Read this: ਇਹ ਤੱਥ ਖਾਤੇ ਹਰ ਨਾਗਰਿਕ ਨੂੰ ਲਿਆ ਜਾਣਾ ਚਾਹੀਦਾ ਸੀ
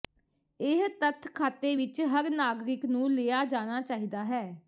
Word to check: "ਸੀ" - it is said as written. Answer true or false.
false